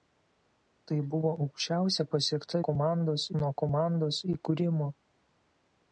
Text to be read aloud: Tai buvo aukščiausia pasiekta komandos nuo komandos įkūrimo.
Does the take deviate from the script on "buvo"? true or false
false